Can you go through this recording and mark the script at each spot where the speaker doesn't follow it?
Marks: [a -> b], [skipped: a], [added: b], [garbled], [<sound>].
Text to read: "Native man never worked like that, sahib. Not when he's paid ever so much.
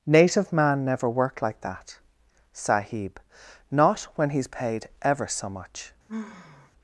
"Native man never worked like that, sahib. Not when he's paid ever so much. [sigh]